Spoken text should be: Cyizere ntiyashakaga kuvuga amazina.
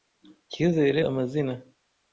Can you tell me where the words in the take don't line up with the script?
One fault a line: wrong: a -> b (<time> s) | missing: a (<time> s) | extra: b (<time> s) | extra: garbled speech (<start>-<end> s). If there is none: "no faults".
missing: ntiyashakaga kuvuga (1.0 s)